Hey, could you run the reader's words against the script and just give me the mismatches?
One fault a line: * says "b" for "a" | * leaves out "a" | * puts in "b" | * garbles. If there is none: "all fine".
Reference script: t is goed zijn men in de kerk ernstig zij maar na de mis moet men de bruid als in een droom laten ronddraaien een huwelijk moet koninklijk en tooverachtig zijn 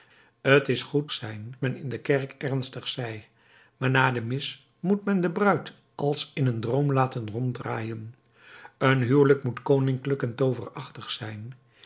all fine